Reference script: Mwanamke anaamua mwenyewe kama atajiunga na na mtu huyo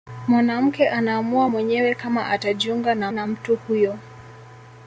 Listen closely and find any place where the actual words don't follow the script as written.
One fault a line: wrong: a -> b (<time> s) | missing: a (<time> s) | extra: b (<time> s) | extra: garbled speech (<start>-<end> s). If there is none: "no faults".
no faults